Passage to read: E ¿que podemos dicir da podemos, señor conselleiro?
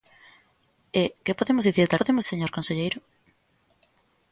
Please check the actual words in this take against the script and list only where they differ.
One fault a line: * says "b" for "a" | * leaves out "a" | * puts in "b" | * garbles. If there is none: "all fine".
all fine